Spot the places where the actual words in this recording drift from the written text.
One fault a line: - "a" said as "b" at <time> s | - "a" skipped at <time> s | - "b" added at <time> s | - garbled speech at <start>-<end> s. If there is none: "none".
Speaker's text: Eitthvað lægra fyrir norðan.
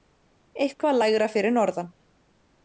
none